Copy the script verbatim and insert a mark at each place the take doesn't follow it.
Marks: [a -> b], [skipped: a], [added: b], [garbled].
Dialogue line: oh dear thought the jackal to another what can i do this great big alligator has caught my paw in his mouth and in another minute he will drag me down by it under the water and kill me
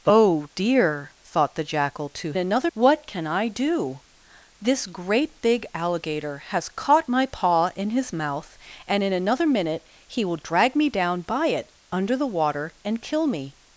oh dear thought the jackal to another what can i do this great big alligator has caught my paw in his mouth and in another minute he will drag me down by it under the water and kill me